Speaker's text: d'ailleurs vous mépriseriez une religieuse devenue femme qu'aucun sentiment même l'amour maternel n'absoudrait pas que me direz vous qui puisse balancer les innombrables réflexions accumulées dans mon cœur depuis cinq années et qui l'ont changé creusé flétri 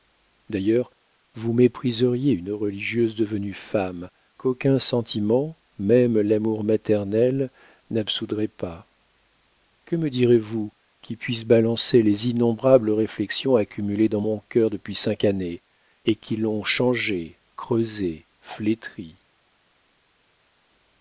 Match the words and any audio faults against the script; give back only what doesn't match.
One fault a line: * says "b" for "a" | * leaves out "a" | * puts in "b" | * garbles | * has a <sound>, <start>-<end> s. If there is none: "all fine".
all fine